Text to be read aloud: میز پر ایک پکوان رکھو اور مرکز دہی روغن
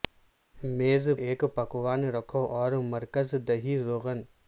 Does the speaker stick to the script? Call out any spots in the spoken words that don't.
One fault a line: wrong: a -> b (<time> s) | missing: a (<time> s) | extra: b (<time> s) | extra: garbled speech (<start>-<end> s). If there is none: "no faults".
missing: پر (1.1 s)